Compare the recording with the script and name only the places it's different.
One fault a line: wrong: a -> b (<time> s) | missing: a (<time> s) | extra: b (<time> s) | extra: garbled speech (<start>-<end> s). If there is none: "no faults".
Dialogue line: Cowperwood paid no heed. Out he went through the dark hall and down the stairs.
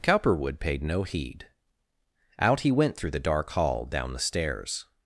missing: and (3.9 s)